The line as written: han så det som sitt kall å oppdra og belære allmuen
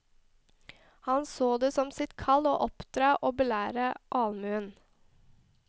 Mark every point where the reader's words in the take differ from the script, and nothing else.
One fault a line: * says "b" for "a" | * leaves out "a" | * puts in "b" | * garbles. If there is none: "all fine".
all fine